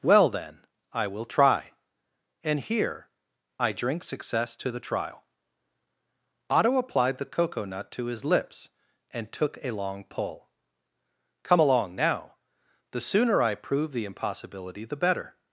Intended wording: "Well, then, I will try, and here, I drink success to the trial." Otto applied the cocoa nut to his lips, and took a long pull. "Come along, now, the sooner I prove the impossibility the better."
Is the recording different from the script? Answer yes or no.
no